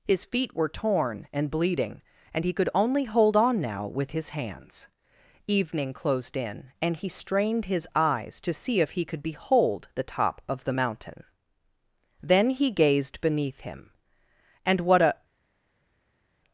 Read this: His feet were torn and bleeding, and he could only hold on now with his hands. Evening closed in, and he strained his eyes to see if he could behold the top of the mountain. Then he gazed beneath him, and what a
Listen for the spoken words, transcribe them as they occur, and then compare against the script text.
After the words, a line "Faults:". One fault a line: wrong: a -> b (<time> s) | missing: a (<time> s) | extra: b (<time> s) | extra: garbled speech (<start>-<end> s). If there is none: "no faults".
His feet were torn and bleeding, and he could only hold on now with his hands. Evening closed in, and he strained his eyes to see if he could behold the top of the mountain. Then he gazed beneath him, and what a
Faults:
no faults